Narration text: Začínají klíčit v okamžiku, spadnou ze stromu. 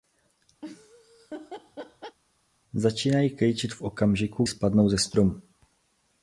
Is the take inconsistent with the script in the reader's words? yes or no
no